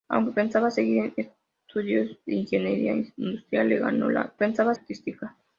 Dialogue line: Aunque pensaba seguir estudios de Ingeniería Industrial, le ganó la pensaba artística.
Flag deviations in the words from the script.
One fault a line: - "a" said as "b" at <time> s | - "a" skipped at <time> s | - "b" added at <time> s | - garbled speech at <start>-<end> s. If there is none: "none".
none